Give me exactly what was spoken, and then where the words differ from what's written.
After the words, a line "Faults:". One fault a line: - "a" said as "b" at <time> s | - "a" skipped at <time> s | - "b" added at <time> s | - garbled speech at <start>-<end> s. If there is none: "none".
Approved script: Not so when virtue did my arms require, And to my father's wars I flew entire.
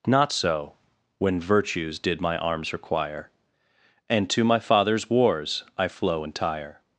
Not so when virtues did my arms require, And to my father's wars I flow entire.
Faults:
- "virtue" said as "virtues" at 1.4 s
- "flew" said as "flow" at 5.9 s